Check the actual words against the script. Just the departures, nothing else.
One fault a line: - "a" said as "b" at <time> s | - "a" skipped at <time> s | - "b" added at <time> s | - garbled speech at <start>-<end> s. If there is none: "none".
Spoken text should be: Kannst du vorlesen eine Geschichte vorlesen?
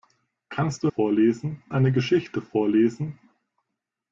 none